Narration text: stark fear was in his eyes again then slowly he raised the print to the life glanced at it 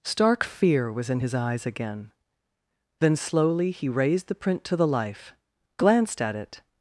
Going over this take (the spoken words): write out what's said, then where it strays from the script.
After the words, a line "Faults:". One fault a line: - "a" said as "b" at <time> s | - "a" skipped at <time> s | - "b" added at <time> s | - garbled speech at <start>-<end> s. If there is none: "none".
stark fear was in his eyes again then slowly he raised the print to the life glanced at it
Faults:
none